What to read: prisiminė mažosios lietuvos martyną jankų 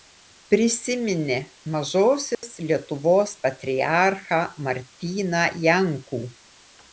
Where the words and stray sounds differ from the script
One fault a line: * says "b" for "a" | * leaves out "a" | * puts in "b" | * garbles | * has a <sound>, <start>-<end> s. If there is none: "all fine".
* has a dropout, 2.3-2.4 s
* puts in "patriarchą"